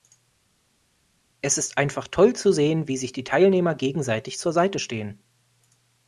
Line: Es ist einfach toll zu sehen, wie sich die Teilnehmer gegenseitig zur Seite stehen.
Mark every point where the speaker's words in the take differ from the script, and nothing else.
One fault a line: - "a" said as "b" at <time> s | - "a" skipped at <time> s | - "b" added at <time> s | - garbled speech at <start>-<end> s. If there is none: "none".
none